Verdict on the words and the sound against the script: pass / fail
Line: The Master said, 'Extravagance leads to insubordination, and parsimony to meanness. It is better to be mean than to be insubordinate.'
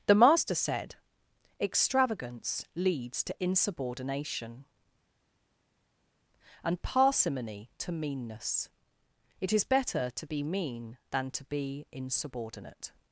pass